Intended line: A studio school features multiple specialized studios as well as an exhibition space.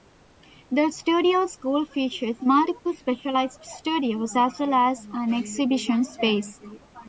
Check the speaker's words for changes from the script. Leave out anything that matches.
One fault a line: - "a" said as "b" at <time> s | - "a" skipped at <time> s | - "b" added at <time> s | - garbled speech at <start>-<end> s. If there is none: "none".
- "A" said as "The" at 0.7 s